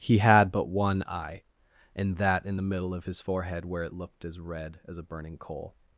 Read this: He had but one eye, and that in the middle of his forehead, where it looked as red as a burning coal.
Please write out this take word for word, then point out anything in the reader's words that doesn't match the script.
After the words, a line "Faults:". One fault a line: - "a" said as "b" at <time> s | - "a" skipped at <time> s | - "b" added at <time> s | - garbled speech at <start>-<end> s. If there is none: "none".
He had but one eye, and that in the middle of his forehead, where it looked as red as a burning coal.
Faults:
none